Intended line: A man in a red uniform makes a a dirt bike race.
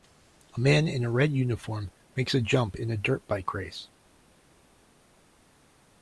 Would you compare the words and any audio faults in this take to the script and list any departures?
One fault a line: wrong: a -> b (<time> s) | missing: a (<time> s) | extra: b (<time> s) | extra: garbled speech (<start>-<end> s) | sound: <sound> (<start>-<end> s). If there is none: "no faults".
extra: jump in (2.4 s)